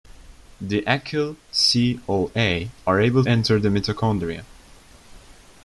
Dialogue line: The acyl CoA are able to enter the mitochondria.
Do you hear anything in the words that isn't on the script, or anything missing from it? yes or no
yes